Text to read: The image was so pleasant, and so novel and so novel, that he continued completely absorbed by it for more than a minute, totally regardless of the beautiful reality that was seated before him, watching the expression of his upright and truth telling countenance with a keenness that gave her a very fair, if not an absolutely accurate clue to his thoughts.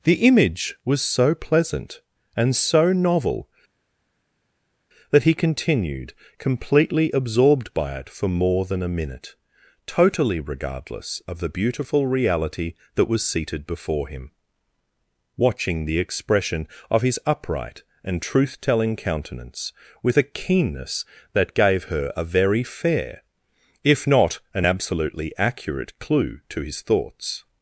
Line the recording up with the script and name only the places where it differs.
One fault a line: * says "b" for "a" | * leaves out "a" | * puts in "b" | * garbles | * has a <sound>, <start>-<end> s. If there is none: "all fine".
* leaves out "and so novel"